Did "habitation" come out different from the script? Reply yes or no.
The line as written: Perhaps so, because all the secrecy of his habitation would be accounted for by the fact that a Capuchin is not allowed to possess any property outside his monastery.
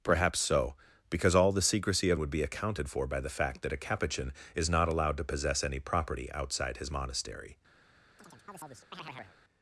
yes